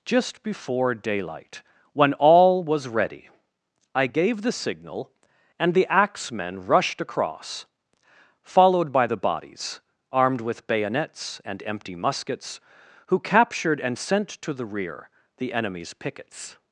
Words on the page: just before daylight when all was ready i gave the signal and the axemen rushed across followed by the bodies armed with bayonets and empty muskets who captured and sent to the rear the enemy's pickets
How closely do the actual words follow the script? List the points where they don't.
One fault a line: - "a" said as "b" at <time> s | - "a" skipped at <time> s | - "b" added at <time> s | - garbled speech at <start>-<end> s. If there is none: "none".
none